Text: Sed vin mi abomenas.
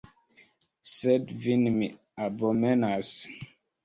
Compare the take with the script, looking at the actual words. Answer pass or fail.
pass